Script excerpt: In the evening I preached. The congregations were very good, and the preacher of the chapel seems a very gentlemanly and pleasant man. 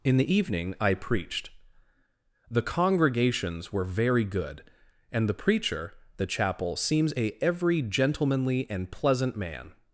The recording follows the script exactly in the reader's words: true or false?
false